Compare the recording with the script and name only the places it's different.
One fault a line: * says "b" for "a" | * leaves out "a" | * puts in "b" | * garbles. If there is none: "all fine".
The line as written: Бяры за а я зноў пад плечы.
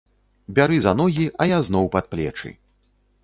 * puts in "ногі"